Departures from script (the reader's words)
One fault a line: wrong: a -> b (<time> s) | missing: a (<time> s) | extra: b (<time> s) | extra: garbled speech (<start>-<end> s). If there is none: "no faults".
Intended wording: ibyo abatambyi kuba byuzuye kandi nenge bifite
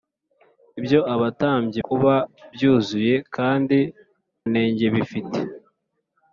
no faults